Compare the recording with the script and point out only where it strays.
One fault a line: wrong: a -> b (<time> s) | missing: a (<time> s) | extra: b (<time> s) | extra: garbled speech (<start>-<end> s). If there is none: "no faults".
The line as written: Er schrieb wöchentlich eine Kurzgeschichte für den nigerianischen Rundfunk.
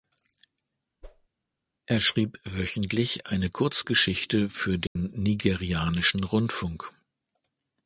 no faults